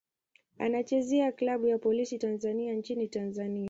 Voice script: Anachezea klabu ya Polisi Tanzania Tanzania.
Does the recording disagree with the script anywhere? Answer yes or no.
yes